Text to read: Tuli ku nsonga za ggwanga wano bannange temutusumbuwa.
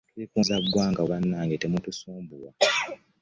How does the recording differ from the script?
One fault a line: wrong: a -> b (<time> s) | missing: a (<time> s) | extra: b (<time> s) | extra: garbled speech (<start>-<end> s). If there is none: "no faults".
missing: nsonga (0.4 s)
missing: wano (1.0 s)